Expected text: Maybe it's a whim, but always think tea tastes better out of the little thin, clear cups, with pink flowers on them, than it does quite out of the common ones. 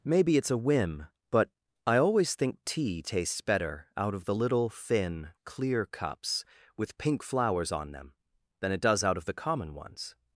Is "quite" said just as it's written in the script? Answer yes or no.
no